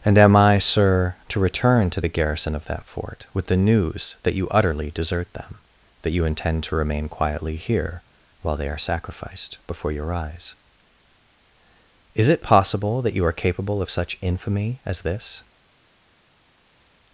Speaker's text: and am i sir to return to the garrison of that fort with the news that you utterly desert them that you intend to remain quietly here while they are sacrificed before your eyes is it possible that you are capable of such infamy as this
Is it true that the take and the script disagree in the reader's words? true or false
false